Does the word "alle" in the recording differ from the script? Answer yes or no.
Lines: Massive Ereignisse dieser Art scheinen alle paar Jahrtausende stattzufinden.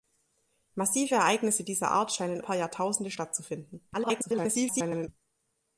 yes